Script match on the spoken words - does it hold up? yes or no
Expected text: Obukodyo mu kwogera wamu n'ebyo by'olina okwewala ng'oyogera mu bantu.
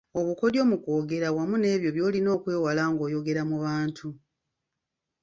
yes